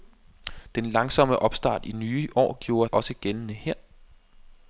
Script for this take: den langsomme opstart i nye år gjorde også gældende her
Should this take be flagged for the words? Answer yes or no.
no